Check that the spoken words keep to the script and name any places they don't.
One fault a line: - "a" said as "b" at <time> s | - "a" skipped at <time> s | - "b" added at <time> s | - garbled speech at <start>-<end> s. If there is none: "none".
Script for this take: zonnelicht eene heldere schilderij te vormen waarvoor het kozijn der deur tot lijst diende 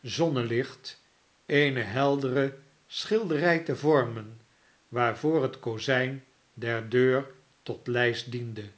none